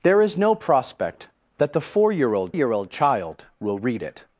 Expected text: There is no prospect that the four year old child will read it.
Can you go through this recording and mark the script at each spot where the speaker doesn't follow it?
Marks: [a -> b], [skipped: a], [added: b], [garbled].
There is no prospect that the four year old [added: year old] child will read it.